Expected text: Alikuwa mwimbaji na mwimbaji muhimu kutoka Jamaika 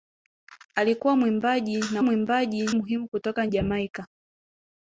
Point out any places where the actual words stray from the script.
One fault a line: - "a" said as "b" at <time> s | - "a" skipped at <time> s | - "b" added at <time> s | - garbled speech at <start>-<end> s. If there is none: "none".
none